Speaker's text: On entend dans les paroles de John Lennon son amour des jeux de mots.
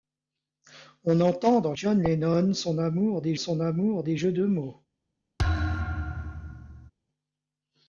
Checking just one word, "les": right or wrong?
wrong